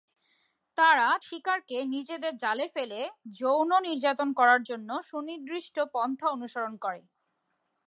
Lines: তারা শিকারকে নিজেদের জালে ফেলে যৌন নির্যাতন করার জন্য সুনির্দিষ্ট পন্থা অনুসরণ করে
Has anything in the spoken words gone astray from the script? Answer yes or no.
no